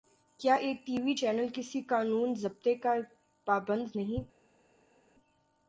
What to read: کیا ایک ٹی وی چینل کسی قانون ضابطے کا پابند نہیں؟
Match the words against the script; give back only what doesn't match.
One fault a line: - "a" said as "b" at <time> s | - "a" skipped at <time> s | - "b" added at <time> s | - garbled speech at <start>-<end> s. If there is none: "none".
none